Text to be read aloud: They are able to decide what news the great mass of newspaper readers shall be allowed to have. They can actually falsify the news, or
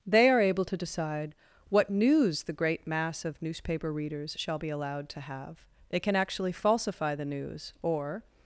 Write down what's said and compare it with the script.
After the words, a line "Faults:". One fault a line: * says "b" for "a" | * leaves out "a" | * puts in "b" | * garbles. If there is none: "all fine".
They are able to decide what news the great mass of newspaper readers shall be allowed to have. They can actually falsify the news, or
Faults:
all fine